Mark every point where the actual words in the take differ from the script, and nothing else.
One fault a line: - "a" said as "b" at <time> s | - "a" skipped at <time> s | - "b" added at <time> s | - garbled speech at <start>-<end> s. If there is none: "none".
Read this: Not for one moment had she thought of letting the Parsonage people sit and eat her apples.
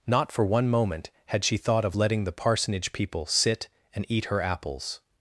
none